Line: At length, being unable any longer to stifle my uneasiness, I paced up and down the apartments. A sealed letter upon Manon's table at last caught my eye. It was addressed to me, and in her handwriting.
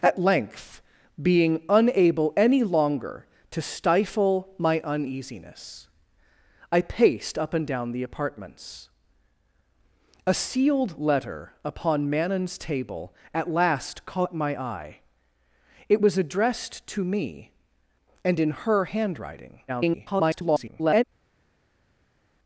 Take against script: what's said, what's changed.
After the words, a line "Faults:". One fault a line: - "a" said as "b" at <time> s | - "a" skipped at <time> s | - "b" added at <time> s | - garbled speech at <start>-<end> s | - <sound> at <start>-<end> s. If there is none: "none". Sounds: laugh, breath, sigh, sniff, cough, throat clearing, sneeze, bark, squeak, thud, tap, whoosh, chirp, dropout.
At length, being unable any longer to stifle my uneasiness, I paced up and down the apartments. A sealed letter upon Manon's table at last caught my eye. It was addressed to me, and in her handwriting. [garbled]
Faults:
- garbled speech at 19.7-21.0 s